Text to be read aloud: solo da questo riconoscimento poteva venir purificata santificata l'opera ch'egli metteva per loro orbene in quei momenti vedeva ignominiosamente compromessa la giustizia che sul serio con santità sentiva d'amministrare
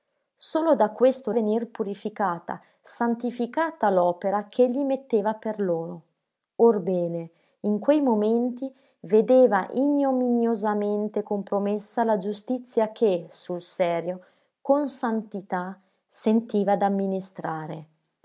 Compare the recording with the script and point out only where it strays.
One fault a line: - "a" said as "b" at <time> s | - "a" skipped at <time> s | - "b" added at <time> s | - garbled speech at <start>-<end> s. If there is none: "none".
- "riconoscimento poteva" skipped at 1.3 s